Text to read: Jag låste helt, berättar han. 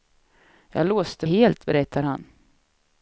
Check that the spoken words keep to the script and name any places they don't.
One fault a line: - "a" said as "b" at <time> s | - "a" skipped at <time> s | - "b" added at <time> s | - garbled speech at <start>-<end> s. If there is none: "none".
none